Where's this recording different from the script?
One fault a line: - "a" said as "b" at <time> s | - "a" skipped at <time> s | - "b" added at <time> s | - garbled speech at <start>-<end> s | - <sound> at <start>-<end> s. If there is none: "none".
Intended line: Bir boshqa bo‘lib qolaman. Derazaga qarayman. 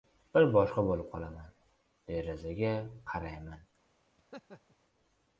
- laugh at 4.2-4.8 s